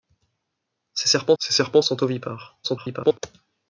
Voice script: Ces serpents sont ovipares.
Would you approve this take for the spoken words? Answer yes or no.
no